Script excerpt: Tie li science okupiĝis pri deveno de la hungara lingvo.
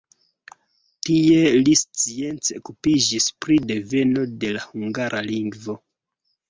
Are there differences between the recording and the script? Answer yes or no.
no